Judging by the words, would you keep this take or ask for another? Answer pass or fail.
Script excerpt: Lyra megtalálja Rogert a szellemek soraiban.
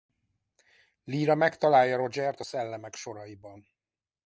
pass